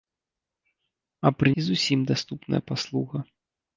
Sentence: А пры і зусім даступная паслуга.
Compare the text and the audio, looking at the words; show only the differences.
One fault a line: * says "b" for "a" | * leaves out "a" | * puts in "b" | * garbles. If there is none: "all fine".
all fine